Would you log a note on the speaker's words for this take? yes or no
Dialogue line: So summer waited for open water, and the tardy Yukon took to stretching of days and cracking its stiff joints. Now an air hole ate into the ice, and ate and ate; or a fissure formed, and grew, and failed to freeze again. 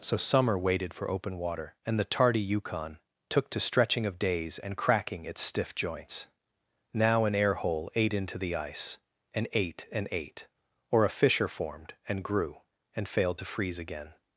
no